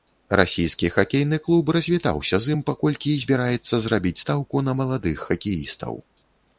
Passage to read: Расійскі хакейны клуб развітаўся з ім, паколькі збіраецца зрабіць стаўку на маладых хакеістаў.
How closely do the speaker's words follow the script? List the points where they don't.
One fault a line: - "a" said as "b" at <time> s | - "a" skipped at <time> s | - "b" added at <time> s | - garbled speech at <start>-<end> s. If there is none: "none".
none